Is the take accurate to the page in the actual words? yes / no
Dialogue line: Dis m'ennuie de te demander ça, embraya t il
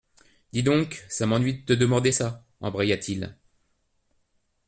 no